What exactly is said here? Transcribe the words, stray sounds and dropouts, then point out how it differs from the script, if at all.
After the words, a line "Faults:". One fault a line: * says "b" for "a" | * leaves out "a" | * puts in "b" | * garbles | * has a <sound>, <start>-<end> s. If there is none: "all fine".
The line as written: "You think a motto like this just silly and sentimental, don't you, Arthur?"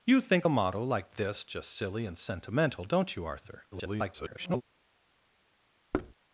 "You think a motto like this just silly and sentimental, don't you, Arthur?" [garbled]
Faults:
* garbles
* has a thud, 5.9-6.1 s